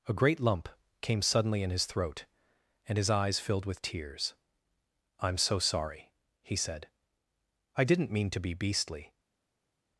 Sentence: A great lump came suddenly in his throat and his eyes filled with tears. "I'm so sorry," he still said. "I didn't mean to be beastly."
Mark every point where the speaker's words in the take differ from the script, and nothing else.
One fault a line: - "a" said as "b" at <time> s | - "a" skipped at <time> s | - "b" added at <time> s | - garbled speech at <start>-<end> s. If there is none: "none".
- "still" skipped at 6.6 s